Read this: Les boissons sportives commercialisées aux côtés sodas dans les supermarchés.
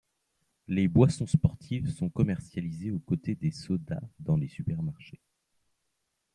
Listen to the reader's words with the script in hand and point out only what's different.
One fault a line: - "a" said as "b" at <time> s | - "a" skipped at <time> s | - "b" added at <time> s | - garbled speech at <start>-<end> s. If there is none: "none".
- "sont" added at 1.9 s
- "des" added at 3.4 s